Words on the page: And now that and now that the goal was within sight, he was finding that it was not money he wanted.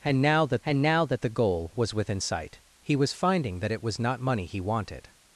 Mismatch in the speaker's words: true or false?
false